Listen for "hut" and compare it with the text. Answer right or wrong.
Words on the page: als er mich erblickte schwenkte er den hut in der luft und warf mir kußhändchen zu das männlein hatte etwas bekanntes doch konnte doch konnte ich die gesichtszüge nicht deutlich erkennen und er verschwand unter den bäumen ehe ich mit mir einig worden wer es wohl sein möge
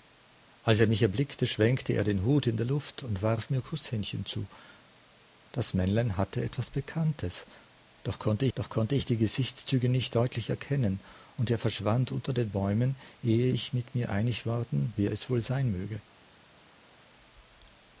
right